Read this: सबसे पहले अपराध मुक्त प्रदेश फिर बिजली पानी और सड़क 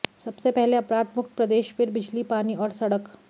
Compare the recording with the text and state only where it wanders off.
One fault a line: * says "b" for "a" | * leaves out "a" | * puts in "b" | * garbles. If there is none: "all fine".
all fine